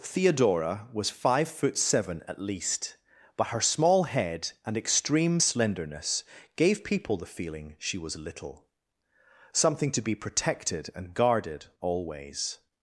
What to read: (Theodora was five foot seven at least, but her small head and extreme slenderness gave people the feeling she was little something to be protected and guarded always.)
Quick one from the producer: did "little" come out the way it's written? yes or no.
yes